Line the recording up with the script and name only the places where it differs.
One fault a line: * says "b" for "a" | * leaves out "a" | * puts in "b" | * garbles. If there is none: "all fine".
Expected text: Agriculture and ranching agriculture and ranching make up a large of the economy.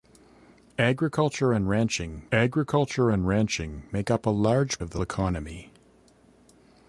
all fine